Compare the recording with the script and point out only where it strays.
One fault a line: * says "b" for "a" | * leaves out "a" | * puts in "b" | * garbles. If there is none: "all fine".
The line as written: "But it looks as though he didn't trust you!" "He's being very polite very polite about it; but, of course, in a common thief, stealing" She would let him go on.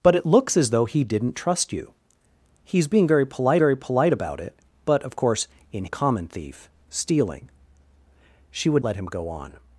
all fine